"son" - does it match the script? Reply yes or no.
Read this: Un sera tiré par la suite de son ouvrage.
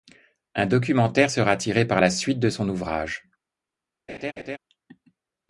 yes